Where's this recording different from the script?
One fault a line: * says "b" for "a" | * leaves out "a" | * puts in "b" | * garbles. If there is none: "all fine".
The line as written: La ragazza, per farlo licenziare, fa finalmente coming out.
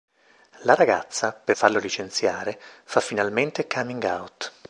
all fine